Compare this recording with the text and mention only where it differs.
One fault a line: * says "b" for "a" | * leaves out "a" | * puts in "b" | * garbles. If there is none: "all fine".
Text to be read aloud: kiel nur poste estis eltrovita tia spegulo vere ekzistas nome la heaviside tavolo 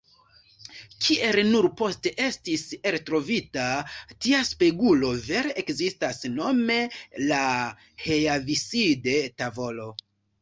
all fine